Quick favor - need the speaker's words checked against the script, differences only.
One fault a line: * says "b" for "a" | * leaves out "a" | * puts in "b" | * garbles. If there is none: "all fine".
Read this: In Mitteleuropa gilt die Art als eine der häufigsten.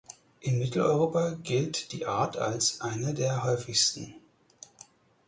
all fine